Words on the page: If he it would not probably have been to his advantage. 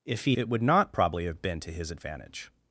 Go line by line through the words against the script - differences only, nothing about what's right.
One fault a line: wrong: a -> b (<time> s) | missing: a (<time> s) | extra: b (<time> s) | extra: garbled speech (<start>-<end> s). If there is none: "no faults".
no faults